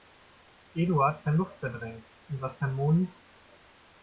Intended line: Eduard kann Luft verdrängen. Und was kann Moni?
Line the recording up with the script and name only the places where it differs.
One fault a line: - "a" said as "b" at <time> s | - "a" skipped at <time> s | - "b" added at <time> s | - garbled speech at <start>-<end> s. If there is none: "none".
none